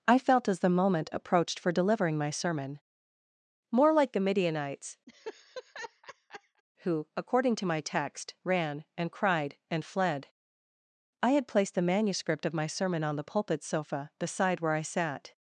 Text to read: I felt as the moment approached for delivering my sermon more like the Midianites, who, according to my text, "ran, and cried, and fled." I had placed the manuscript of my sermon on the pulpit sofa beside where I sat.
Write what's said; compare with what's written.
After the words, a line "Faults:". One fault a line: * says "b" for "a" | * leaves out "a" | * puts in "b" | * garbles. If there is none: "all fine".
I felt as the moment approached for delivering my sermon more like the Midianites, who, according to my text, "ran, and cried, and fled." I had placed the manuscript of my sermon on the pulpit sofa beside where I sat.
Faults:
all fine